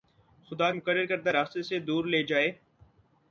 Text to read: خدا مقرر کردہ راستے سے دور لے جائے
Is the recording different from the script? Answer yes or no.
no